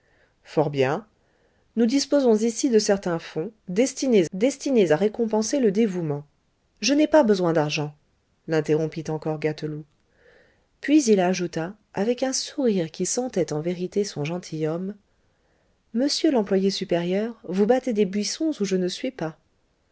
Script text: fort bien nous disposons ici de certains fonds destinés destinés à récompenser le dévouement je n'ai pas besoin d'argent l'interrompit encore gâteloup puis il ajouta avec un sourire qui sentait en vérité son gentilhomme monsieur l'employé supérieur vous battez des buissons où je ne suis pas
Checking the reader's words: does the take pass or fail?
pass